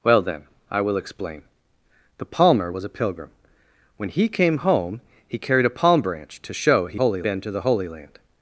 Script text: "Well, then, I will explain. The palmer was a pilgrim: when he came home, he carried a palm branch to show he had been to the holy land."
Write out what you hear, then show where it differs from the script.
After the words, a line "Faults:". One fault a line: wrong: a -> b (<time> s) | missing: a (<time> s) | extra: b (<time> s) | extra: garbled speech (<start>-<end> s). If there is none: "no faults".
"Well, then, I will explain. The palmer was a pilgrim: when he came home, he carried a palm branch to show he holy been to the holy land."
Faults:
wrong: had -> holy (6.9 s)